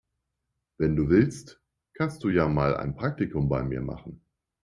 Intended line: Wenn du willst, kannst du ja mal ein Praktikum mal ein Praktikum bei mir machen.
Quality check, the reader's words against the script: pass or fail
fail